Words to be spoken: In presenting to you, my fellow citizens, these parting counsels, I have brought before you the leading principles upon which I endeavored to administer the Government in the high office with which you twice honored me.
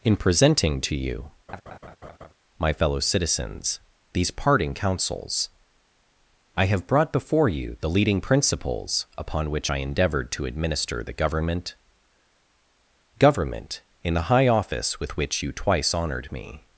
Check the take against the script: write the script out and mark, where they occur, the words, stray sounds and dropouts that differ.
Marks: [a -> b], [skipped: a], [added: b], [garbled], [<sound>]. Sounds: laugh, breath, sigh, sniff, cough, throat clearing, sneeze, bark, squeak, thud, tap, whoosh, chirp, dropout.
In presenting to you, [laugh] my fellow citizens, these parting counsels, I have brought before you the leading principles upon which I endeavored to administer the Government [added: Government] in the high office with which you twice honored me.